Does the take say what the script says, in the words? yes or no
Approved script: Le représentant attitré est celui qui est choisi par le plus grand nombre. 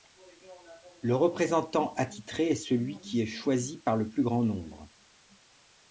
yes